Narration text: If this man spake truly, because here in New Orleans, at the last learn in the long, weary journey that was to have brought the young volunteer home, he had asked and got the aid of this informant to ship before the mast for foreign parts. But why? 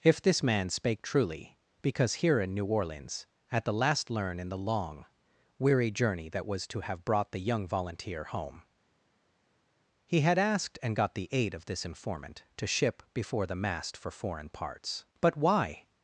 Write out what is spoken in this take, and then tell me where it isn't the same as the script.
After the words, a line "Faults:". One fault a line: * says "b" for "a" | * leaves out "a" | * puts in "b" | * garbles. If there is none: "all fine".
If this man spake truly, because here in New Orleans, at the last learn in the long, weary journey that was to have brought the young volunteer home, he had asked and got the aid of this informant to ship before the mast for foreign parts. But why?
Faults:
all fine